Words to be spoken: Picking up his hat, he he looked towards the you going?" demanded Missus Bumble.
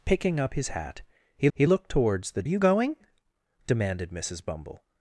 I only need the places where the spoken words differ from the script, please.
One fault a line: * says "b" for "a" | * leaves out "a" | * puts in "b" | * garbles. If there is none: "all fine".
all fine